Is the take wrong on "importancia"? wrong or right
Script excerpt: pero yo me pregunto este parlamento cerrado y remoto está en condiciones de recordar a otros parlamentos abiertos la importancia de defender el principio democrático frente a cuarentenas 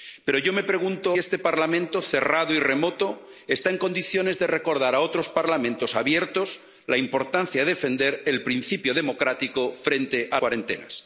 right